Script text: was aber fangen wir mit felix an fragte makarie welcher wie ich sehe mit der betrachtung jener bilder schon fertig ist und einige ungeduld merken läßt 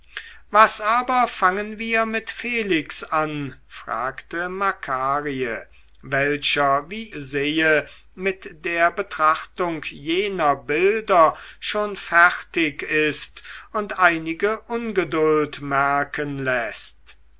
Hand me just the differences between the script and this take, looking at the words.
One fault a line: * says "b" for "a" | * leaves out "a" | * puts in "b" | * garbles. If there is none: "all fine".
* leaves out "ich"